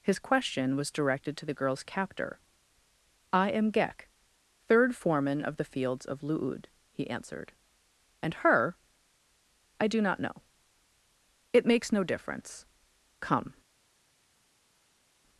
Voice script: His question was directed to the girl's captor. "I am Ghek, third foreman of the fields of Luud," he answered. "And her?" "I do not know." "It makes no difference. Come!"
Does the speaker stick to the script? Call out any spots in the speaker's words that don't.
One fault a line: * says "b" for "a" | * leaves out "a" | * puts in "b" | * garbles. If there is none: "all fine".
all fine